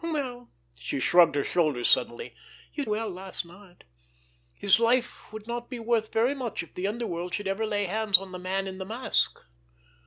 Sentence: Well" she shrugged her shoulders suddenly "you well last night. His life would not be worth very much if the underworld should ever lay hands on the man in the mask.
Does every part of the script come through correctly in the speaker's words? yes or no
yes